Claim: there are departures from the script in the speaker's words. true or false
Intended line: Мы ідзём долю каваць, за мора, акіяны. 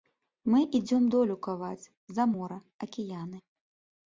false